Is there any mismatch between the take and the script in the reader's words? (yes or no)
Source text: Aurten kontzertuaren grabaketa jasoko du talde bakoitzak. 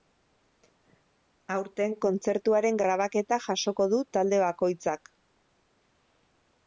no